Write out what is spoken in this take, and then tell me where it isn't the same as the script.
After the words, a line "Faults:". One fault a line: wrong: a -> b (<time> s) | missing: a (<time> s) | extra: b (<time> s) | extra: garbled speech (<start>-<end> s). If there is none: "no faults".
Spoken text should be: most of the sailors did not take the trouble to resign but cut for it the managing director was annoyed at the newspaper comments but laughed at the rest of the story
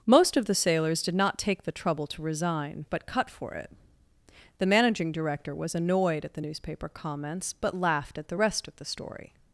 most of the sailors did not take the trouble to resign but cut for it the managing director was annoyed at the newspaper comments but laughed at the rest of the story
Faults:
no faults